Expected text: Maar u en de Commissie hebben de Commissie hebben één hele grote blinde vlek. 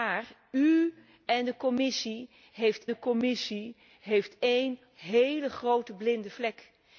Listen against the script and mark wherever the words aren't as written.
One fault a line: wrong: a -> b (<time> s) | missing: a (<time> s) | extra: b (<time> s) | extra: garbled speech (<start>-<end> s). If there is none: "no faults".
no faults